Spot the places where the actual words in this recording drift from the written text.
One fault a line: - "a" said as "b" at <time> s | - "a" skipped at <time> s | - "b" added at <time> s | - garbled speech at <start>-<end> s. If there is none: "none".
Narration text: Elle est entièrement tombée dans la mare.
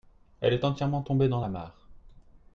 none